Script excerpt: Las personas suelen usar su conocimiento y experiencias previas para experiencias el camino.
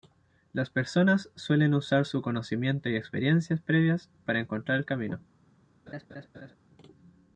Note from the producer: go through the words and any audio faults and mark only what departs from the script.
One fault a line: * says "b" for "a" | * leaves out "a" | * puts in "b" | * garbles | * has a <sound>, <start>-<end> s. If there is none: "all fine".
* says "encontrar" for "experiencias"
* has a laugh, 5.9-6.6 s